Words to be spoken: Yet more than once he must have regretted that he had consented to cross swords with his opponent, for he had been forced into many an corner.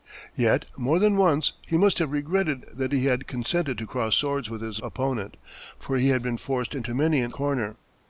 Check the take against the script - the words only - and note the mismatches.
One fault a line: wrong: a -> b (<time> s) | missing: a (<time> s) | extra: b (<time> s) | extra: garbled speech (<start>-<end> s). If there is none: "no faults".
no faults